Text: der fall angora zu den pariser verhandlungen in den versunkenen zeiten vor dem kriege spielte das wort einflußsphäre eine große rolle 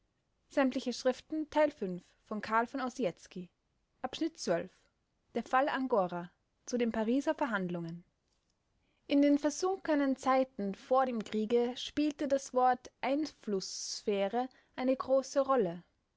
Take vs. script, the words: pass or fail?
pass